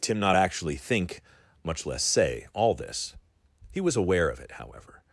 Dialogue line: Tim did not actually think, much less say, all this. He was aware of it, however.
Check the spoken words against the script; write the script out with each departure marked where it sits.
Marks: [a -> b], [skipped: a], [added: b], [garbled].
Tim [skipped: did] not actually think, much less say, all this. He was aware of it, however.